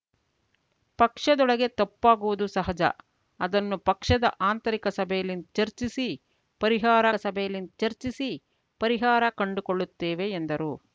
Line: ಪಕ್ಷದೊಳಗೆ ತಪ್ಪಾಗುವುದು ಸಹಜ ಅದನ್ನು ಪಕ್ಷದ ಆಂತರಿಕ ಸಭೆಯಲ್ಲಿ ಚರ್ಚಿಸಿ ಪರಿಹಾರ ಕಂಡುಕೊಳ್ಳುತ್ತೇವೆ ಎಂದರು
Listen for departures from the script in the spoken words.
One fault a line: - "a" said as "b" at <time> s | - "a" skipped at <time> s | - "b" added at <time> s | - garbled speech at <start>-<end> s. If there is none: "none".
- "ಸಭೆಯಲ್ಲಿ ಚರ್ಚಿಸಿ ಪರಿಹಾರ" added at 7.1 s